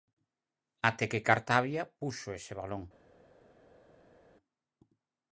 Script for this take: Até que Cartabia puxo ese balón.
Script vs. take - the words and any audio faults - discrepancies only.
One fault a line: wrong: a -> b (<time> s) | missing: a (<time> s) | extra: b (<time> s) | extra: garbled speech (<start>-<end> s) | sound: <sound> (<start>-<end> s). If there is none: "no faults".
no faults